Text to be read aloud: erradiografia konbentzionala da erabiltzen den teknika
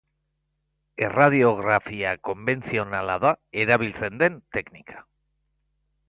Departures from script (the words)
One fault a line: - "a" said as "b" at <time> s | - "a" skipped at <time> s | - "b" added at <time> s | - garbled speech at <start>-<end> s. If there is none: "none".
none